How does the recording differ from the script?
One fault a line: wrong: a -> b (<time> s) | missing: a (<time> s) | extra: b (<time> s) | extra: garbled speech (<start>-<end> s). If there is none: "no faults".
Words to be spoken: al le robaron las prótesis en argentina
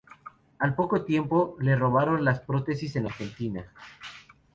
extra: poco tiempo (0.7 s)